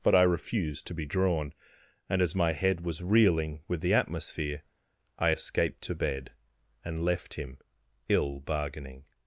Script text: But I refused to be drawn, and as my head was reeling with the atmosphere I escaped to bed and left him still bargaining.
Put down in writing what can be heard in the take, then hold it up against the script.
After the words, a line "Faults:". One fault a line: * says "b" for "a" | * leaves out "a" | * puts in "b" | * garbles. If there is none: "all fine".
But I refused to be drawn, and as my head was reeling with the atmosphere I escaped to bed and left him ill bargaining.
Faults:
* says "ill" for "still"